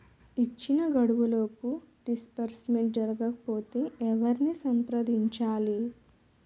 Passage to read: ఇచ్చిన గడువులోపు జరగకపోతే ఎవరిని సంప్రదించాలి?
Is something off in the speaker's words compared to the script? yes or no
yes